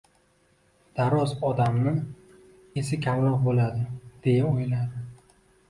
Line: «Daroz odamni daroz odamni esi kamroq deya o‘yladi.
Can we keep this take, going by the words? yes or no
no